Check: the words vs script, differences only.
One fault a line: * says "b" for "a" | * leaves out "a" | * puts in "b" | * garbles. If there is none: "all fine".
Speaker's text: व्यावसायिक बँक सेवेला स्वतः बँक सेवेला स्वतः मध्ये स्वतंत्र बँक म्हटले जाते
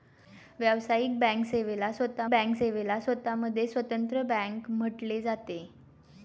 all fine